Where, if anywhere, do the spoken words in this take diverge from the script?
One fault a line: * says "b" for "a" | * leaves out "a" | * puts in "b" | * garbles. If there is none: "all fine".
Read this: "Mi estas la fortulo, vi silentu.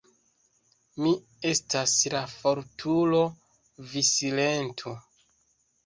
all fine